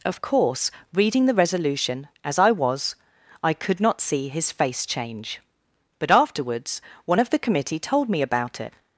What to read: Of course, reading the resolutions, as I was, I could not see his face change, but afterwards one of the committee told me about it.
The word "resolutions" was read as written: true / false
false